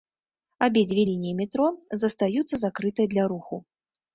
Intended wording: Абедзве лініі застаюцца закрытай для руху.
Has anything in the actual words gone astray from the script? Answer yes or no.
yes